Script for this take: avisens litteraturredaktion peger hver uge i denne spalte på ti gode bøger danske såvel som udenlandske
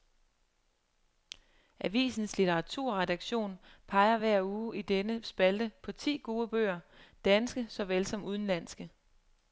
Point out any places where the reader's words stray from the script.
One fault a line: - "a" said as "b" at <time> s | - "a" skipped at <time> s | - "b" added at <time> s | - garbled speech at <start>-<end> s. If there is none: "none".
none